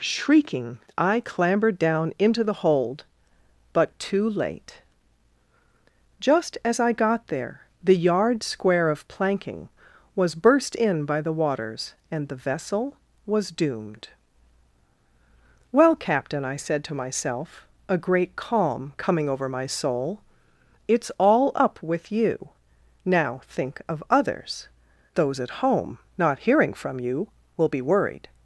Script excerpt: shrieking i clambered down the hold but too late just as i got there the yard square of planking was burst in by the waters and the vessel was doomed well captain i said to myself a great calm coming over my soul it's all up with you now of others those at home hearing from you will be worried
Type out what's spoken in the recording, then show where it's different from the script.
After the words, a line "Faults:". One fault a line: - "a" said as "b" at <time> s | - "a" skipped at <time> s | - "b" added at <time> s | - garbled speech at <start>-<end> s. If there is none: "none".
shrieking i clambered down into the hold but too late just as i got there the yard square of planking was burst in by the waters and the vessel was doomed well captain i said to myself a great calm coming over my soul it's all up with you now think of others those at home not hearing from you will be worried
Faults:
- "into" added at 2.2 s
- "think" added at 23.4 s
- "not" added at 26.2 s